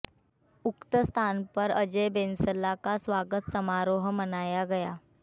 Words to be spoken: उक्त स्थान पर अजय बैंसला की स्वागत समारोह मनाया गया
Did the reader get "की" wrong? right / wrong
wrong